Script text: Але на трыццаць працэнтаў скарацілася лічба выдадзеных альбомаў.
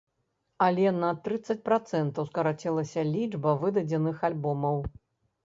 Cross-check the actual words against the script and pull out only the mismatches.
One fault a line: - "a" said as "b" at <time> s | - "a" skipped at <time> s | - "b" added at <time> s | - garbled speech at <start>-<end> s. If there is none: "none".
none